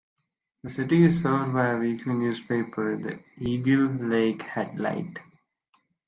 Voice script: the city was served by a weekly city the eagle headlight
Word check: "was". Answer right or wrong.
wrong